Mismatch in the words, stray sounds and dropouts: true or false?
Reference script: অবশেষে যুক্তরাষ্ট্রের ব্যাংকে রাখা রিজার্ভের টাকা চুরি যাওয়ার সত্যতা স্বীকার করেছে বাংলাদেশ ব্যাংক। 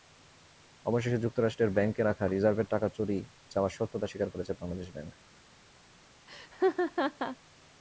true